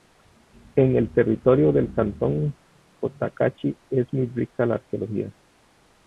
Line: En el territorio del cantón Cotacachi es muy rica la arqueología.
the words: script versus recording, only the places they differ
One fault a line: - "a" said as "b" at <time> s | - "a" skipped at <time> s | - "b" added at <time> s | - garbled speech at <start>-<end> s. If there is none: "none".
none